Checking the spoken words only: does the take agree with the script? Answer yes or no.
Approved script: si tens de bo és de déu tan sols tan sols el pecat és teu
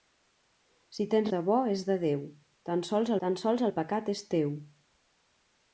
yes